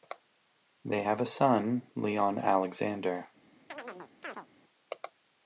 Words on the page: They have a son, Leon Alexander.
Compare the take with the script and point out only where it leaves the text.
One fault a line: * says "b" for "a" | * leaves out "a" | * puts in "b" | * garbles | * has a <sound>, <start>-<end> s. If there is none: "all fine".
* has a chirp, 3.7-4.5 s